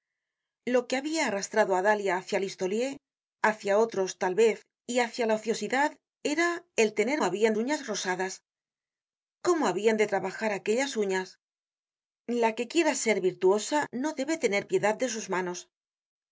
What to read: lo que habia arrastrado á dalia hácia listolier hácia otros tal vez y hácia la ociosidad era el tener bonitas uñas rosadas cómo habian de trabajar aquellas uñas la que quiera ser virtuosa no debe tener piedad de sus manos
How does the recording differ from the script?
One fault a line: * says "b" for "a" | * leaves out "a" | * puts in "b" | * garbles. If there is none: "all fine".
* says "habian" for "bonitas"